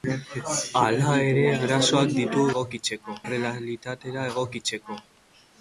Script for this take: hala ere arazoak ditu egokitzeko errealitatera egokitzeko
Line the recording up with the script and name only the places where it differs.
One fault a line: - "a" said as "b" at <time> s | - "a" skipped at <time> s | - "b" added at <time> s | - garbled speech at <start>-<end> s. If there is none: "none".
none